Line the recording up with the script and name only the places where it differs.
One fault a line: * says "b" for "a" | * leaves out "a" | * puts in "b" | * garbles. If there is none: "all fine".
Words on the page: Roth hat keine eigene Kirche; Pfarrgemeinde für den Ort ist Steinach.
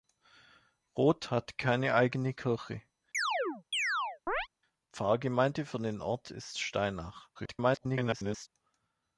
* garbles